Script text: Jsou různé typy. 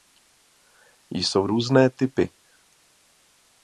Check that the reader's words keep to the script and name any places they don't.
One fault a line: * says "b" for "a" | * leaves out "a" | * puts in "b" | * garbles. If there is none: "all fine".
all fine